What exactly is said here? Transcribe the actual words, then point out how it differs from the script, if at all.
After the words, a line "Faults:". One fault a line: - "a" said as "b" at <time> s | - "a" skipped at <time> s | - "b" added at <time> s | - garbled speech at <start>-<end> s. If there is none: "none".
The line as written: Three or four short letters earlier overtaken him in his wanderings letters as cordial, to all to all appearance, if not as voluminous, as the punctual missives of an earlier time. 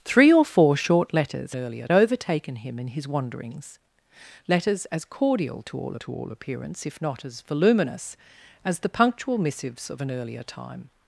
Three or four short letters earlier overtaken him in his wanderings letters as cordial, to all to all appearance, if not as voluminous, as the punctual missives of an earlier time.
Faults:
none